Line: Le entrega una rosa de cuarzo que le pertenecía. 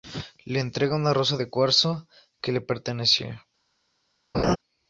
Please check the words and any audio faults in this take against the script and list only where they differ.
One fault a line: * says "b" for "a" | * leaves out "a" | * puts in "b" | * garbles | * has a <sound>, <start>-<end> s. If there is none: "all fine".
* has a laugh, 4.3-4.6 s